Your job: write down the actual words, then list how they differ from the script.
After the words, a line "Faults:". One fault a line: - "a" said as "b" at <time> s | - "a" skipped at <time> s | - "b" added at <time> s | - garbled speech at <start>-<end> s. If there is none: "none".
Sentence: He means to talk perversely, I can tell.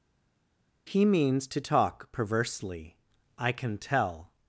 He means to talk perversely, I can tell.
Faults:
none